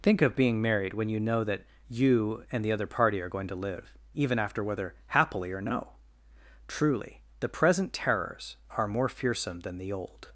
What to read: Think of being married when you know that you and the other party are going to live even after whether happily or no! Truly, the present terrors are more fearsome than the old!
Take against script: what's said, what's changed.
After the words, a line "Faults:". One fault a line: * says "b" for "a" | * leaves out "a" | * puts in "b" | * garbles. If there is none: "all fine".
Think of being married when you know that you and the other party are going to live even after whether happily or no! Truly, the present terrors are more fearsome than the old!
Faults:
all fine